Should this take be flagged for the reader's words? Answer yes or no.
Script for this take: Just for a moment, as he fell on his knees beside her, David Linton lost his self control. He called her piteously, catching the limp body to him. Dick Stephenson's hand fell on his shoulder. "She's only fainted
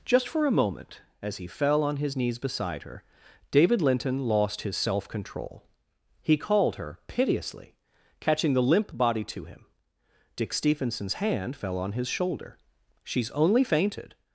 no